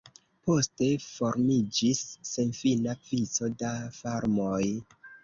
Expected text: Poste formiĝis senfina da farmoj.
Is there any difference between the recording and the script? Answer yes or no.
yes